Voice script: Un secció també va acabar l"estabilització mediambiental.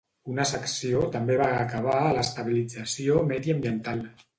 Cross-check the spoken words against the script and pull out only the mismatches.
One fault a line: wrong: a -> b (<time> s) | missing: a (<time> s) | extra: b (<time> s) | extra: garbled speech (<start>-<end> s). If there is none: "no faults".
wrong: Un -> Una (0.3 s)
extra: a (2.0 s)